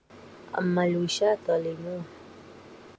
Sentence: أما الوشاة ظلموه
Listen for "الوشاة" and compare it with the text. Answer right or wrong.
right